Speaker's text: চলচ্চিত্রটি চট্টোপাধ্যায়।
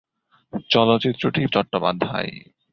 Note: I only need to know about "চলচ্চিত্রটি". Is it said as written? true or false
true